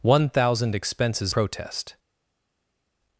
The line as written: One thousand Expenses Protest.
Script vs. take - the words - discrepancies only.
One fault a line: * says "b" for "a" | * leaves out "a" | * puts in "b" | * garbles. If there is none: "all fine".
all fine